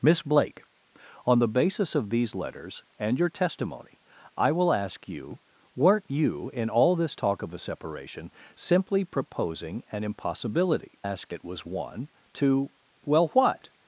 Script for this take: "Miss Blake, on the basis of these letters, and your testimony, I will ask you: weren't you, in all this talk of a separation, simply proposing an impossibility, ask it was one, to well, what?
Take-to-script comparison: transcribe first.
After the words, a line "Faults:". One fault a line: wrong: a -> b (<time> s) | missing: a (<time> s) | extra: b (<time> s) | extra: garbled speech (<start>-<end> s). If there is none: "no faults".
"Miss Blake, on the basis of these letters, and your testimony, I will ask you: weren't you, in all this talk of a separation, simply proposing an impossibility, ask it was one, to well, what?
Faults:
no faults